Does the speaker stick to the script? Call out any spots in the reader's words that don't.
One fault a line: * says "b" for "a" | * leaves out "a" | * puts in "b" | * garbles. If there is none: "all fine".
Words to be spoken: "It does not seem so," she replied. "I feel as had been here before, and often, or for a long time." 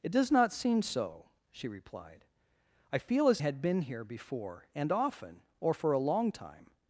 all fine